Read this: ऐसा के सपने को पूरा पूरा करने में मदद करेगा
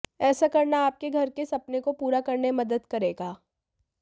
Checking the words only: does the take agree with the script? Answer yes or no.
no